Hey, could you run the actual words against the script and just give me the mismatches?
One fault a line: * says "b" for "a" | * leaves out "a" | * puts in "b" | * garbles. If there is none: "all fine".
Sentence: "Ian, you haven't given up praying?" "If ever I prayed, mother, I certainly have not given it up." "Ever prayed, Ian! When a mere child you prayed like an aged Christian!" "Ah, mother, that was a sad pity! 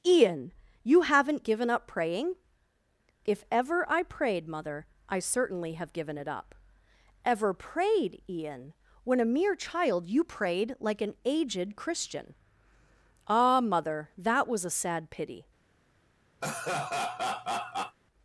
* leaves out "not"